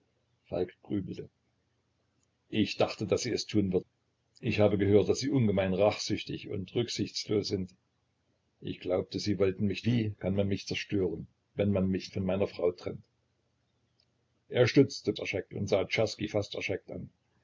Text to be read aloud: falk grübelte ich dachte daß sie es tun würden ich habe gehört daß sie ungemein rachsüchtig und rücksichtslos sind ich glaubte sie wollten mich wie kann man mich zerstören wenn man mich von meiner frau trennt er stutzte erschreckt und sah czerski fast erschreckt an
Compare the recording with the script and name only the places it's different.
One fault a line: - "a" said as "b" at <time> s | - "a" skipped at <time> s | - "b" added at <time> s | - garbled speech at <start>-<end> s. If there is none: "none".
none